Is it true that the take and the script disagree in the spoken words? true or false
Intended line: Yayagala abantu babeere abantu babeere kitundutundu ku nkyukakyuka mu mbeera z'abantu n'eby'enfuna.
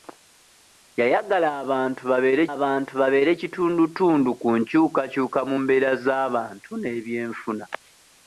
false